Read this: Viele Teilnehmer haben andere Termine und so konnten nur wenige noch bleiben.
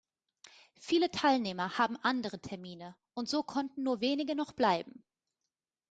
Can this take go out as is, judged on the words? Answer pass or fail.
pass